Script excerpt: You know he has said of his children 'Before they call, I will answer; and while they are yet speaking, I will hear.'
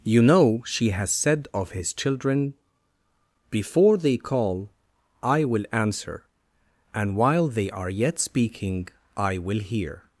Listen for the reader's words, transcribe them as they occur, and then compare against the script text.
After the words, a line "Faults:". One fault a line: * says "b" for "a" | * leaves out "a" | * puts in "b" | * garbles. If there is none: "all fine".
You know she has said of his children 'Before they call, I will answer; and while they are yet speaking, I will hear.'
Faults:
* says "she" for "he"